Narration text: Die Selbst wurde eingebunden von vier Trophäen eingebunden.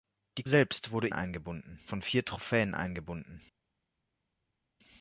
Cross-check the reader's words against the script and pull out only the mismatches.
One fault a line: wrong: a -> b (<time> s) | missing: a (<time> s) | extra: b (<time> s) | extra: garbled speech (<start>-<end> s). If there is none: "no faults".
no faults